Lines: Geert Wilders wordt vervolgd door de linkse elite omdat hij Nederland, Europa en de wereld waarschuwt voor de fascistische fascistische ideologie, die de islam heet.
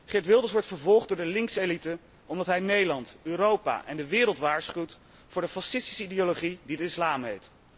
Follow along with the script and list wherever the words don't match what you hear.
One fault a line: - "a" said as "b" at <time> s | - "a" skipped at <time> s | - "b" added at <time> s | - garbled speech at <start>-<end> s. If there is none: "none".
- "fascistische" skipped at 6.0 s